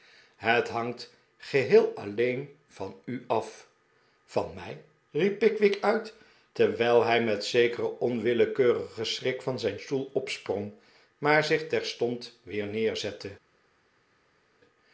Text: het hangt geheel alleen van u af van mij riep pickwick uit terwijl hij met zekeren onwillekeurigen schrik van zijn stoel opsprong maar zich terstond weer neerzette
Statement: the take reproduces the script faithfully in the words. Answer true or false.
true